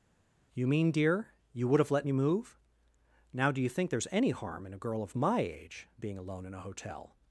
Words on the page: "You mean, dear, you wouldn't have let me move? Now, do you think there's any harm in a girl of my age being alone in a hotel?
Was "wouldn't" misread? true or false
true